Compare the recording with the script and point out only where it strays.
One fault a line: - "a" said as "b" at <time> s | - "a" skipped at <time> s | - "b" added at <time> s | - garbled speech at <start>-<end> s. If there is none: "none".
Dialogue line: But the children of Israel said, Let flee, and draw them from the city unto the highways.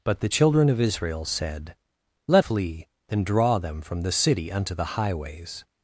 none